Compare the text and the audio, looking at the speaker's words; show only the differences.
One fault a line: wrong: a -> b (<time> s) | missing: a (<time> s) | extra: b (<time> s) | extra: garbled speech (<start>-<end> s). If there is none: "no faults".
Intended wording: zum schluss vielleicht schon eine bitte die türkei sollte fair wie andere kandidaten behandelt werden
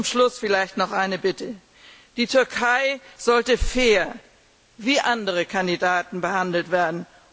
wrong: schon -> noch (0.8 s)